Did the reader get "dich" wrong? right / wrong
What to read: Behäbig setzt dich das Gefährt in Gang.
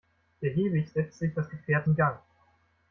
wrong